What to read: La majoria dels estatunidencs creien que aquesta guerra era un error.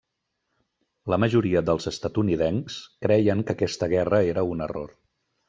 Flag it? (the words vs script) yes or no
no